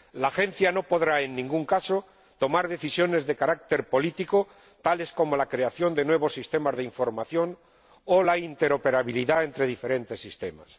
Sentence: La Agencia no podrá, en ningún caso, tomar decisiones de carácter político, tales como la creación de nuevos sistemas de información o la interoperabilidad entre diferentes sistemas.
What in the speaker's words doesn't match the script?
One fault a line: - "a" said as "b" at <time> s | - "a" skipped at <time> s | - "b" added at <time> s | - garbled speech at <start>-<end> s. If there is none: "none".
none